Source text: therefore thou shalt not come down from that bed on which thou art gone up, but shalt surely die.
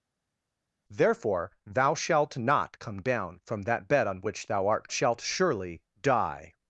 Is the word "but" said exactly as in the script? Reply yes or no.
no